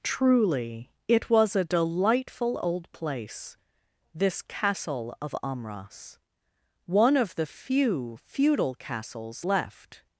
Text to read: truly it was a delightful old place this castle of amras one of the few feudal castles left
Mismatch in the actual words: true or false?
false